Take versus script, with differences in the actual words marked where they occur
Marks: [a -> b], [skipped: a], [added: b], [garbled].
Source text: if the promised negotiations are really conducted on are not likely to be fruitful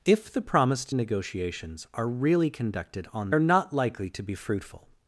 if the promised negotiations are really conducted on are not likely to be fruitful